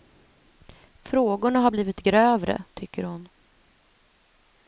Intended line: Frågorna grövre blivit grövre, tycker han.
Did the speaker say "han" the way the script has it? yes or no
no